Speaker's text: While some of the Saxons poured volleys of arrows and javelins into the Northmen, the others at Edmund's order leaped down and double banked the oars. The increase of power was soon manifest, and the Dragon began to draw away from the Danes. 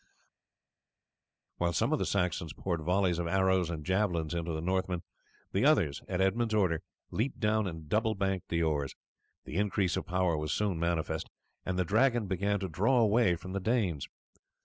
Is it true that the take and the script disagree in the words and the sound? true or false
false